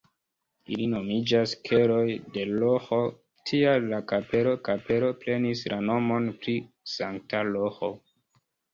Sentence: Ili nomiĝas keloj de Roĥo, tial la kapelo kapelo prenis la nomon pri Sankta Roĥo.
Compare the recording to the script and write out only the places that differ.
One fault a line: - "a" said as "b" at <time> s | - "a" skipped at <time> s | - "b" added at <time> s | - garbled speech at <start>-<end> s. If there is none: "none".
none